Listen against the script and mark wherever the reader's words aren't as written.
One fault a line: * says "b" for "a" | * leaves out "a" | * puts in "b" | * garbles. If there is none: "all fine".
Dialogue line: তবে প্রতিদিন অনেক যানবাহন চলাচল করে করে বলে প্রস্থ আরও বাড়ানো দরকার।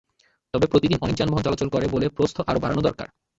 * leaves out "করে"